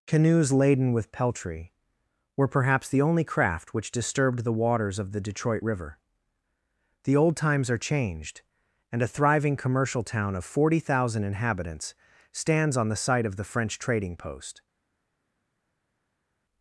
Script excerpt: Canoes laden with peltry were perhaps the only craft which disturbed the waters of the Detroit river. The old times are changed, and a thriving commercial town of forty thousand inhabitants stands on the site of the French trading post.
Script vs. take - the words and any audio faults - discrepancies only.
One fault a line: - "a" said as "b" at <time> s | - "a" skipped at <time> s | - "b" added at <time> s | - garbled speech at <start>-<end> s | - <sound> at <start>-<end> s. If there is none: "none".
none